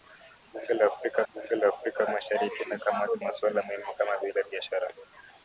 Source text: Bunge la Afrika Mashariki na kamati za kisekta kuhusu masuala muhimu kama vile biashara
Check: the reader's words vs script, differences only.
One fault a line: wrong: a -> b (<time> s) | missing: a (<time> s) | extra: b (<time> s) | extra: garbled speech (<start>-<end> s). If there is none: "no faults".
extra: bunge la Afrika (1.3 s)
missing: za kisekta kuhusu (3.2 s)